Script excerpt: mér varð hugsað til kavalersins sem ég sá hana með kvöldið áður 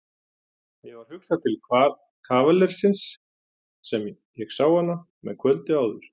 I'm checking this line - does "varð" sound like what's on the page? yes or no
yes